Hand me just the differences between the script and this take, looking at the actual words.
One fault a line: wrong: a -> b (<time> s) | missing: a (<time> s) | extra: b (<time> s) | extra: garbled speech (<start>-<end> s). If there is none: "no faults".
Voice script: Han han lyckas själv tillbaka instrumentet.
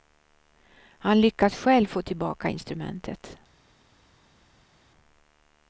missing: han (1.2 s)
extra: få (1.9 s)